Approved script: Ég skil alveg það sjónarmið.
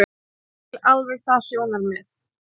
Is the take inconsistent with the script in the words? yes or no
no